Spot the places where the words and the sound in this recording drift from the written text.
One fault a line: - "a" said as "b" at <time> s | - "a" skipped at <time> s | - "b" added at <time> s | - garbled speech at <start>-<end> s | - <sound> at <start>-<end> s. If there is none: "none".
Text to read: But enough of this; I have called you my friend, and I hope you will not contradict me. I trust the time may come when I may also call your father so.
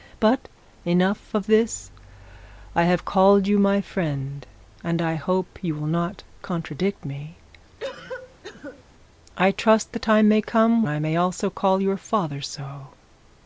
- cough at 7.8-8.8 s
- "when" skipped at 10.8 s